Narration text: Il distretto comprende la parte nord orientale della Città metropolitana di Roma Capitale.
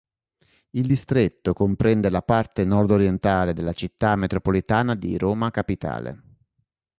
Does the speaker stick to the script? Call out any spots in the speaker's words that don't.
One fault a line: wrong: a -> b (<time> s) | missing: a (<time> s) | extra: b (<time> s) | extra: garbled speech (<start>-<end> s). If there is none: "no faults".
no faults